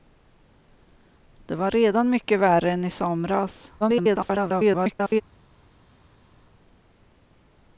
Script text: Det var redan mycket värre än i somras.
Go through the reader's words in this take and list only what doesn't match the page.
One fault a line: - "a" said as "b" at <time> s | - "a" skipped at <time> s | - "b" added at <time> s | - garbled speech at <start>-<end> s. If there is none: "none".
- garbled speech at 3.8-5.2 s